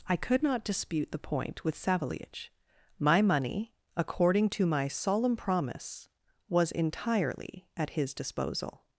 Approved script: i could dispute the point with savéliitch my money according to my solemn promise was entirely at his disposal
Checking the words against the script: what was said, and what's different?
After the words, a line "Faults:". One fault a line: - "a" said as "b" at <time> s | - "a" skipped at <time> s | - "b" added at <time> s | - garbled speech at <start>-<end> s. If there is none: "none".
i could not dispute the point with savéliitch my money according to my solemn promise was entirely at his disposal
Faults:
- "not" added at 0.4 s